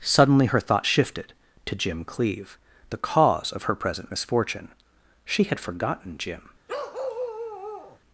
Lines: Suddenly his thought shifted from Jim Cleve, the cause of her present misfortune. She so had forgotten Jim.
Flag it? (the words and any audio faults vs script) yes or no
yes